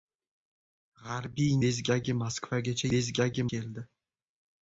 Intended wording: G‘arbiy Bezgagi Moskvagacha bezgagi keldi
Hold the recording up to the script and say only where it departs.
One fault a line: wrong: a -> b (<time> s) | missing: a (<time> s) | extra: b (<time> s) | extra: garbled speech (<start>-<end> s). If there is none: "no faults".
no faults